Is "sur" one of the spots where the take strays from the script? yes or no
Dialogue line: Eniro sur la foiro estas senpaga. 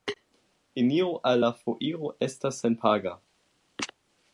yes